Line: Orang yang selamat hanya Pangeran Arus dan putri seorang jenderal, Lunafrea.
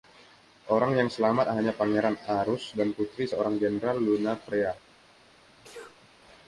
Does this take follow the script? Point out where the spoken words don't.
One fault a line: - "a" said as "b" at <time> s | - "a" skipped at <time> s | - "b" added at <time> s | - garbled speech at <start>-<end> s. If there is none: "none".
none